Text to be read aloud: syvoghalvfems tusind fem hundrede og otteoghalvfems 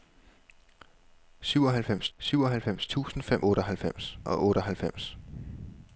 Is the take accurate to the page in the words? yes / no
no